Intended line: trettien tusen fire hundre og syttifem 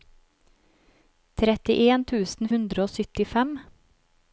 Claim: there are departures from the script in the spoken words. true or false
true